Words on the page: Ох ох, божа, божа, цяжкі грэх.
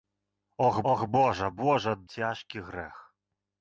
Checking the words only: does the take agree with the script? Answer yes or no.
yes